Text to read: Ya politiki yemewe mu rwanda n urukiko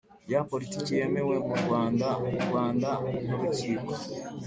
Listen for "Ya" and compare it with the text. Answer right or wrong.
right